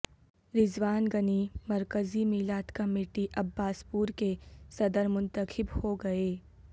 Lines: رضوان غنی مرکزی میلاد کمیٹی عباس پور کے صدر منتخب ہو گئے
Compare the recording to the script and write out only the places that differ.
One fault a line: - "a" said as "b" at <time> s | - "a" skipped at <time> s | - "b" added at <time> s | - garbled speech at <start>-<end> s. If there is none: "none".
none